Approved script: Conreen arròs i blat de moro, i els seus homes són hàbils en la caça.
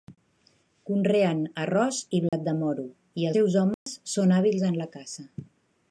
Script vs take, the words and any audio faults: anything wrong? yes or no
yes